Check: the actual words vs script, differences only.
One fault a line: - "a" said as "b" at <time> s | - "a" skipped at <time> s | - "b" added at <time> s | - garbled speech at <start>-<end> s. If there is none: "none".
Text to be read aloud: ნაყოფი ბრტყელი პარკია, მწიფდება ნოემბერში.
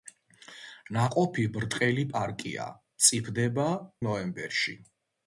none